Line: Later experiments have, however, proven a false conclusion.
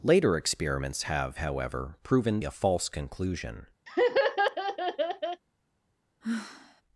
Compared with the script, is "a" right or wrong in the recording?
right